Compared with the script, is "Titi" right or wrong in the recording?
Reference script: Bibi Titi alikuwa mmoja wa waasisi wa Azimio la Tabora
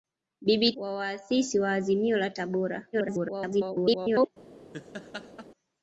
wrong